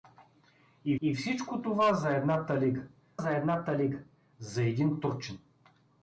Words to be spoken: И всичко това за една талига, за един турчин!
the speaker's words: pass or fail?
fail